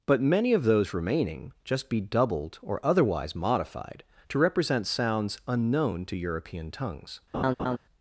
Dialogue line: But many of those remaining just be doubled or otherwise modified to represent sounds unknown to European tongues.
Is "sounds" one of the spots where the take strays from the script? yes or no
no